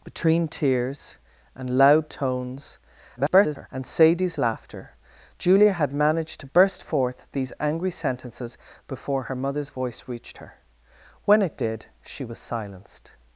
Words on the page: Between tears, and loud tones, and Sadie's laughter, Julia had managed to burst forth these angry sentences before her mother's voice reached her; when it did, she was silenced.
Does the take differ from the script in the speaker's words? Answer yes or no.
yes